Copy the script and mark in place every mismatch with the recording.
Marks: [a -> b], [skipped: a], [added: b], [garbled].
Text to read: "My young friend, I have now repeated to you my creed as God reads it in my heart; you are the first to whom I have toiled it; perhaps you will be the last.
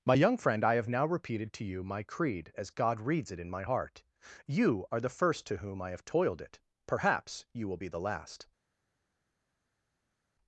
"My young friend, I have now repeated to you my creed as God reads it in my heart; you are the first to whom I have toiled it; perhaps you will be the last.